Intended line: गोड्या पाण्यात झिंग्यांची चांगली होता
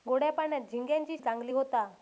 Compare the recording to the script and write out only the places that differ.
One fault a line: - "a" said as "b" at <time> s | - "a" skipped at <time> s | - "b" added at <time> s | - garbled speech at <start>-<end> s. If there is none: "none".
none